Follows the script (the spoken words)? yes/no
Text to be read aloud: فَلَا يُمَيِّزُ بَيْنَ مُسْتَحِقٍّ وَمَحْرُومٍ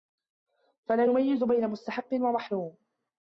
yes